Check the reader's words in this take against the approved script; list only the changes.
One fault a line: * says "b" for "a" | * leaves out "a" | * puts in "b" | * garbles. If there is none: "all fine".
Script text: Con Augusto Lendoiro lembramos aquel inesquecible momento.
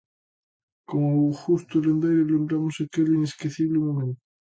all fine